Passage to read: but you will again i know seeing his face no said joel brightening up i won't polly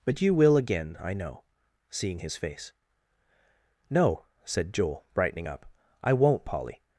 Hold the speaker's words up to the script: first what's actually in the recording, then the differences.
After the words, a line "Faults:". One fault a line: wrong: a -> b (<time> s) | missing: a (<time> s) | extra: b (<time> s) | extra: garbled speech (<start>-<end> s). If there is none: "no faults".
but you will again i know seeing his face no said joel brightening up i won't polly
Faults:
no faults